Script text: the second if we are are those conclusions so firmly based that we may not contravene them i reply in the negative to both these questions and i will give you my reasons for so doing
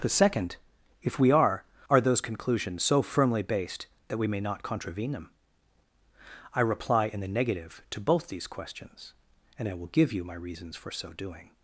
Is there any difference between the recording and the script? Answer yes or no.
no